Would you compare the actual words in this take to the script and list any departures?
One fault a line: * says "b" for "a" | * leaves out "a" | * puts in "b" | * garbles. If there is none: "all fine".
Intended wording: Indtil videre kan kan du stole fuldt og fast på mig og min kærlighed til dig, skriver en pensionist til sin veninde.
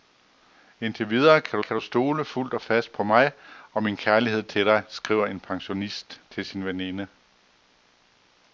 all fine